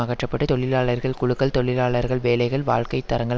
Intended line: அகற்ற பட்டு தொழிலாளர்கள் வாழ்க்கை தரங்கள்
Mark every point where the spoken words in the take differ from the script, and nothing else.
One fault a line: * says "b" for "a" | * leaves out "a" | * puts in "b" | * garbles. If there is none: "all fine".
* puts in "குழுக்கள் தொழிலாளர்கள் வேலைகள்"